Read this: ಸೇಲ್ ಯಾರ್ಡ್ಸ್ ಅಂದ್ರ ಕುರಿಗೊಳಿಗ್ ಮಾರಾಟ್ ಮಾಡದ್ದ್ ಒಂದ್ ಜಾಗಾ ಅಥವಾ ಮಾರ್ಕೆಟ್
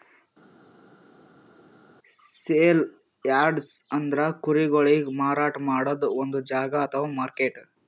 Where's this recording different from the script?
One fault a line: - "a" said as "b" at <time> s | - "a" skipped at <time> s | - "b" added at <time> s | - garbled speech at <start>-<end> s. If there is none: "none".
none